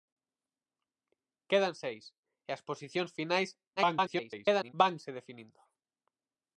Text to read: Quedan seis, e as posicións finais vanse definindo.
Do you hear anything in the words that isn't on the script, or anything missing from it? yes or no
yes